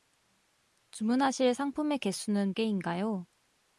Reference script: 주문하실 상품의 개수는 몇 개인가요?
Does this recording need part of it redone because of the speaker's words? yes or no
yes